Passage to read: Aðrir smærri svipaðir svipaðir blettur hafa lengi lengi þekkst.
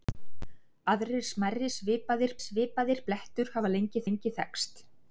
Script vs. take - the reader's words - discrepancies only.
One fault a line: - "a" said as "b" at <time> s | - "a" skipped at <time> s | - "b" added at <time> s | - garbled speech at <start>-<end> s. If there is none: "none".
none